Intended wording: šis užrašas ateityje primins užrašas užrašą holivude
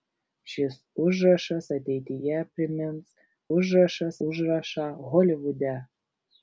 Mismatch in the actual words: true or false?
false